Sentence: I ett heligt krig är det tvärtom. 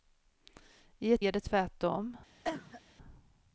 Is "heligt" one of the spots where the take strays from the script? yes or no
yes